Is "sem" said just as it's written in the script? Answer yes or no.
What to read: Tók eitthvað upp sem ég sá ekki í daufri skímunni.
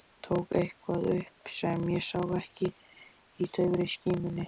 yes